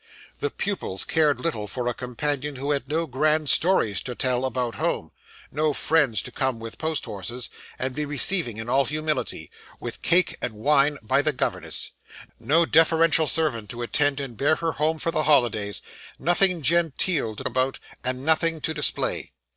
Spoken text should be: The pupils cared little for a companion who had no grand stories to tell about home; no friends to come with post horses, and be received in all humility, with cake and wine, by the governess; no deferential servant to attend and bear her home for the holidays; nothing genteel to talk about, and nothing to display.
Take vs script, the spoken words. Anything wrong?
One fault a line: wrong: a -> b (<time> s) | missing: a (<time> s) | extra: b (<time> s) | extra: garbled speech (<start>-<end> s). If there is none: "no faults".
missing: talk (17.4 s)